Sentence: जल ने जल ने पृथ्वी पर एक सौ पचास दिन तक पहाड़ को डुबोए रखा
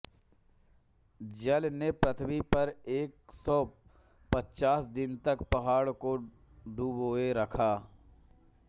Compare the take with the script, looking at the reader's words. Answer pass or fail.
fail